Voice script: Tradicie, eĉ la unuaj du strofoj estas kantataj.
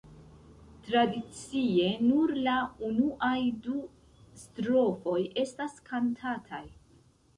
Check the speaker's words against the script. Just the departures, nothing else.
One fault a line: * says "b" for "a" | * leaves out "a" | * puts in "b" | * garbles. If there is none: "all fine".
* says "nur" for "eĉ"